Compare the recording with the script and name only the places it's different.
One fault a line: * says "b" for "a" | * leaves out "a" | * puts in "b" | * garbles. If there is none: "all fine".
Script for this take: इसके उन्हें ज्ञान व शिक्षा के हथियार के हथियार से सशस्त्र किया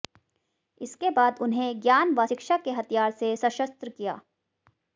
* puts in "बाद"
* leaves out "के हथियार"